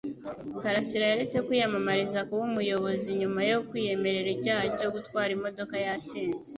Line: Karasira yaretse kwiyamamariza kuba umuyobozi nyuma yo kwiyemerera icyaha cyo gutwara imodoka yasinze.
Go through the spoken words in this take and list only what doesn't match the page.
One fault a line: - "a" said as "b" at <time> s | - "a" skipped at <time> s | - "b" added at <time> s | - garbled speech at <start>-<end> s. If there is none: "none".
none